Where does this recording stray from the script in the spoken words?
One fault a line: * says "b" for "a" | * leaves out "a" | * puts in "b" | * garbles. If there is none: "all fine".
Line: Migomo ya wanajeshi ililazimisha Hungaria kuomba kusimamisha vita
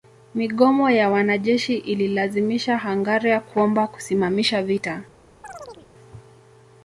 all fine